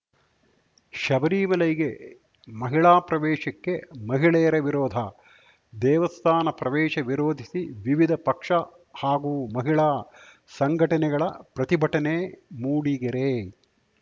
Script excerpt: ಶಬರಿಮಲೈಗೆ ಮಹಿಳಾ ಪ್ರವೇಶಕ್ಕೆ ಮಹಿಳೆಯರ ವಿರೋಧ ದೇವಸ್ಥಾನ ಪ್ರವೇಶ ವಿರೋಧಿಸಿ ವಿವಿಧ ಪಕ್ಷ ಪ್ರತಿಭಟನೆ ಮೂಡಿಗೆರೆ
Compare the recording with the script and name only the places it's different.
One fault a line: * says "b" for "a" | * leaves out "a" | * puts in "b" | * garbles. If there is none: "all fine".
* puts in "ಹಾಗೂ ಮಹಿಳಾ ಸಂಘಟನೆಗಳ"